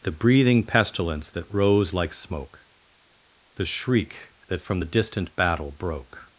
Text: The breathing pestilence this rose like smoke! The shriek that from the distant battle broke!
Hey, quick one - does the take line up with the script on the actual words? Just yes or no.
no